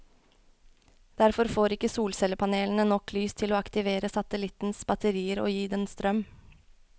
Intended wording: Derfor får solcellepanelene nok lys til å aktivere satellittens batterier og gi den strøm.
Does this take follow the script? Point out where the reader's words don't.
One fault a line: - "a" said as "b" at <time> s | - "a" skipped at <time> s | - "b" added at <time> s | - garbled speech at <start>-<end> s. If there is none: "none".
- "ikke" added at 1.8 s